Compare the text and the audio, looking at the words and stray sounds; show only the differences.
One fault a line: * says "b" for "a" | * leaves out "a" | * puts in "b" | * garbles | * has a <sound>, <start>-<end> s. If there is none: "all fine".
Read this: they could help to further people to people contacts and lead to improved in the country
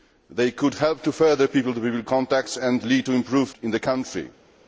all fine